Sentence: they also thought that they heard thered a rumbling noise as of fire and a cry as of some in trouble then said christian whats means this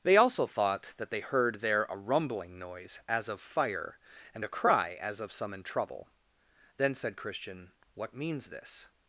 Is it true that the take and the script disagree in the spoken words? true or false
true